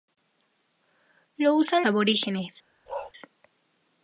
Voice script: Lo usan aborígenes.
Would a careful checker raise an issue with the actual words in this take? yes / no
no